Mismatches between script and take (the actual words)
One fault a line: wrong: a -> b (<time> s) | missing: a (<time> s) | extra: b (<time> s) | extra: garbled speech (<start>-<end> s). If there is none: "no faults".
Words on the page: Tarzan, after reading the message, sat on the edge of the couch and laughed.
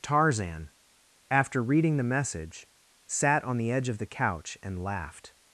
no faults